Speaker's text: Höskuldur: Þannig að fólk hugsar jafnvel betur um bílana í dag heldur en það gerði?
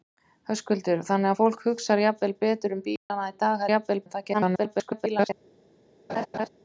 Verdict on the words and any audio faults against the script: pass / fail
fail